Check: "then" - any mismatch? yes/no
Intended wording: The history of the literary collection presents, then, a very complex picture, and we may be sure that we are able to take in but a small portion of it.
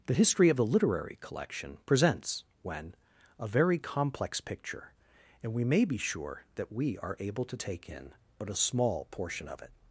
yes